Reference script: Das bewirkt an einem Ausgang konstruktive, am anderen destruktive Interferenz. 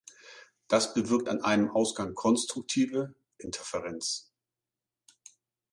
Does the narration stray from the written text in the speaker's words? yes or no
yes